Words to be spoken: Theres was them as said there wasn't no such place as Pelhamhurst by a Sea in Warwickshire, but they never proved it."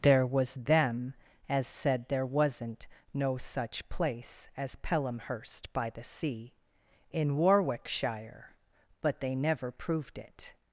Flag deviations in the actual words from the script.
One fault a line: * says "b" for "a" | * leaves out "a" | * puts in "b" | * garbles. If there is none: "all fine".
* says "There" for "Theres"
* says "the" for "a"